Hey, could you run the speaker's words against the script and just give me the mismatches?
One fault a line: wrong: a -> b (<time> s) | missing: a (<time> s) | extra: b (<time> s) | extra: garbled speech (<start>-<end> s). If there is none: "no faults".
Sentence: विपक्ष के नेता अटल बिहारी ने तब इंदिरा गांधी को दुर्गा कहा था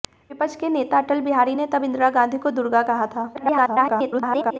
extra: garbled speech (3.3-4.6 s)